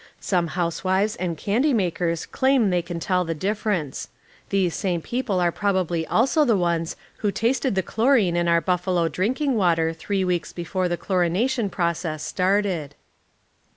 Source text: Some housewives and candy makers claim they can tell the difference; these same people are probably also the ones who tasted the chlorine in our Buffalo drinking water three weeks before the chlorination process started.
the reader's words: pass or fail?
pass